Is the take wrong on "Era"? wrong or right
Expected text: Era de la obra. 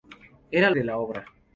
right